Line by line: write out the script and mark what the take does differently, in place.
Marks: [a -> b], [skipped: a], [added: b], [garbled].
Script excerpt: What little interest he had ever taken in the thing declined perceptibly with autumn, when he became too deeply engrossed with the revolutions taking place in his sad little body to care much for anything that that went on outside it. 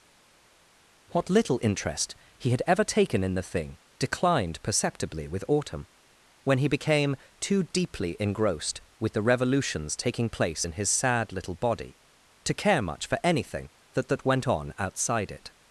What little interest he had ever taken in the thing declined perceptibly with autumn, when he became too deeply engrossed with the revolutions taking place in his sad little body to care much for anything that that went on outside it.